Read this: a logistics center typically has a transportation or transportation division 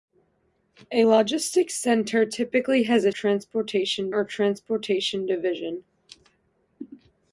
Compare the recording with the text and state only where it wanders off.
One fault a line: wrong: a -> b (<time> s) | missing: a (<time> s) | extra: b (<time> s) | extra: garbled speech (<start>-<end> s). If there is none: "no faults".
no faults